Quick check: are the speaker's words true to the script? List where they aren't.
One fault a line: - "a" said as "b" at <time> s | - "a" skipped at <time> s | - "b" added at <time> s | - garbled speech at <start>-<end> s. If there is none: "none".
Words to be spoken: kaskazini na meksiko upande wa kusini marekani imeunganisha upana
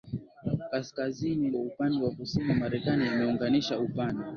- "na meksiko" skipped at 1.5 s